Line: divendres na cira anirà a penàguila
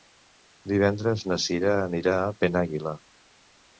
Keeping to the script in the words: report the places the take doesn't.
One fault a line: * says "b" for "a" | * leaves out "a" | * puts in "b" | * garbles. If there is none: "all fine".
all fine